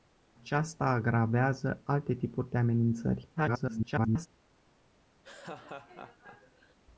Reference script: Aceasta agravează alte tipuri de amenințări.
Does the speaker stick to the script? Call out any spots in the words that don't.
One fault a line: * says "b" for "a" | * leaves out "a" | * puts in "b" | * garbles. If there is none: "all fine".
* garbles